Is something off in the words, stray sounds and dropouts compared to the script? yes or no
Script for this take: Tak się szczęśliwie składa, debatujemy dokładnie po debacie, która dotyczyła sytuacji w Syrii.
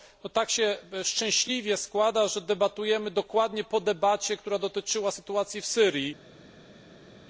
yes